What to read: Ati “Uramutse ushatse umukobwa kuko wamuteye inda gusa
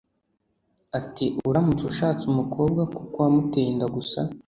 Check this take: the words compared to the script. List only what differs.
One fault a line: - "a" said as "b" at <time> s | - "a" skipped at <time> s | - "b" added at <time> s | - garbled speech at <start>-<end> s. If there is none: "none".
none